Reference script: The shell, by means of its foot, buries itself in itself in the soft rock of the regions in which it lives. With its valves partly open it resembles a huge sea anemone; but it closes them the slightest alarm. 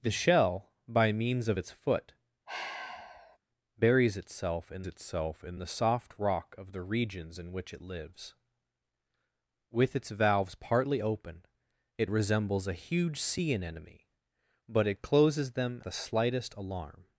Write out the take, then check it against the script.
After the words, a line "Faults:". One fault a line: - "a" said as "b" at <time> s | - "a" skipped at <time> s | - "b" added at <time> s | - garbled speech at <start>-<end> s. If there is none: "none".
The shell, by means of its foot, buries itself in itself in the soft rock of the regions in which it lives. With its valves partly open it resembles a huge sea anemone; but it closes them the slightest alarm.
Faults:
none